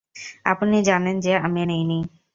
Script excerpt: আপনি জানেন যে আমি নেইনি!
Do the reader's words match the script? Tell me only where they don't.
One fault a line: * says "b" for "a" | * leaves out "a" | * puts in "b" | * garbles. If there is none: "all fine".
all fine